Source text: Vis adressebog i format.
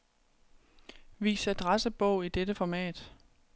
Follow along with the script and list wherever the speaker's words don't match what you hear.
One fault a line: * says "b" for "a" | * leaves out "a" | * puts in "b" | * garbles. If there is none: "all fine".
* puts in "dette"